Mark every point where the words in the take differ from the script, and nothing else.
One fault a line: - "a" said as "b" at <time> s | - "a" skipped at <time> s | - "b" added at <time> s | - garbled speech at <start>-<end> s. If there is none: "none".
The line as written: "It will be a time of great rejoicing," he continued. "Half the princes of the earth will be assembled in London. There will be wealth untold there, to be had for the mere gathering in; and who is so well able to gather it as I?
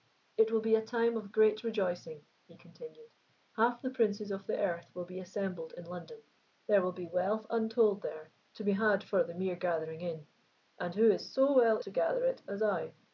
- "able" skipped at 11.8 s